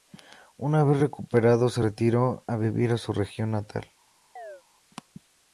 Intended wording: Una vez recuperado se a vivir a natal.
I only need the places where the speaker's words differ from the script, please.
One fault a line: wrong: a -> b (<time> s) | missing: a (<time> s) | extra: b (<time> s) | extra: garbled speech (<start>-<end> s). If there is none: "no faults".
extra: retiró (1.8 s)
extra: su región (3.0 s)